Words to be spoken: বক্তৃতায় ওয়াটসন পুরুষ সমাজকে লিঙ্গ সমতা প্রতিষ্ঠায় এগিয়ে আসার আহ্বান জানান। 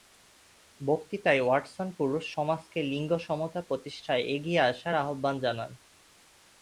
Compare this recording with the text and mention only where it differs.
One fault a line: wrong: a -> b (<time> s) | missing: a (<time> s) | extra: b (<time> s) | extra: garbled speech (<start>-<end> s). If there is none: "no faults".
no faults